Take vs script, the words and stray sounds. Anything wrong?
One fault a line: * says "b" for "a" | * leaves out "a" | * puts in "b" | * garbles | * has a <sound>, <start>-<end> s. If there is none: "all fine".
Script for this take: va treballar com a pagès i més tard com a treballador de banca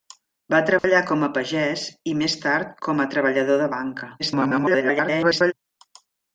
* has a dropout, 0.8-0.8 s
* garbles